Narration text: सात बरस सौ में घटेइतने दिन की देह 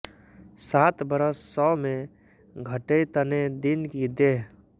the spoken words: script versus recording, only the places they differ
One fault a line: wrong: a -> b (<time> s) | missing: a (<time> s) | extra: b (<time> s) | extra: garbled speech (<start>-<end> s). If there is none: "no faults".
no faults